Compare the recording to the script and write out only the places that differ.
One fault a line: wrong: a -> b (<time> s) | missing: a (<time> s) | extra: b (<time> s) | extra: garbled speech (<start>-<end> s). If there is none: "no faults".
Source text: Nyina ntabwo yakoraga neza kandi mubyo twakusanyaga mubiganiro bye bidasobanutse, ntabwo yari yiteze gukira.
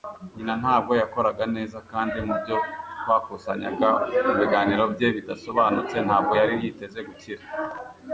no faults